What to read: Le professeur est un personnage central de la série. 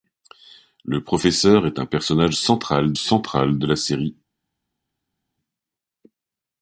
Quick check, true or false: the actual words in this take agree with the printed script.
false